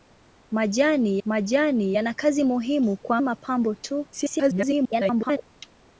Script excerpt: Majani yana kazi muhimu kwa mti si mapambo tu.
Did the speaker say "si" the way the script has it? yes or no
no